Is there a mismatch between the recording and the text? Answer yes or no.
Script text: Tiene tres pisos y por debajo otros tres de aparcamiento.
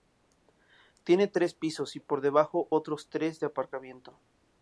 no